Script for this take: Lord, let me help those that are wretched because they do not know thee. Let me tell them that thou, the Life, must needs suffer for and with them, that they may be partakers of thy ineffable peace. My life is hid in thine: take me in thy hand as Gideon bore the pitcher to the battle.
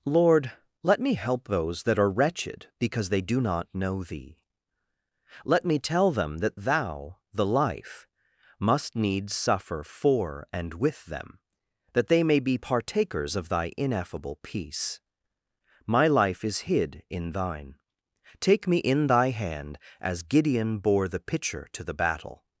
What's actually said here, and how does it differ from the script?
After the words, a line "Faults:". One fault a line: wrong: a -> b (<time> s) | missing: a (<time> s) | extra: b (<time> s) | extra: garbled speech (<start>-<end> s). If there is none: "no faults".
Lord, let me help those that are wretched because they do not know thee. Let me tell them that thou, the Life, must needs suffer for and with them, that they may be partakers of thy ineffable peace. My life is hid in thine: take me in thy hand as Gideon bore the pitcher to the battle.
Faults:
no faults